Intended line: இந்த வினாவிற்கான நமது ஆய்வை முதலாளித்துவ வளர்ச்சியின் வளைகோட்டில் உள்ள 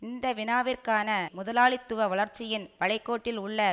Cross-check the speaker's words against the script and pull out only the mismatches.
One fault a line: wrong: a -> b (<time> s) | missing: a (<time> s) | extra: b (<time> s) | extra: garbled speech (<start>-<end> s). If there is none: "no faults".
missing: நமது ஆய்வை (1.1 s)